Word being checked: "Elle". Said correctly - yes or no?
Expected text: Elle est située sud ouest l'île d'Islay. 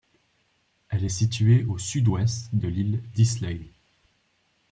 yes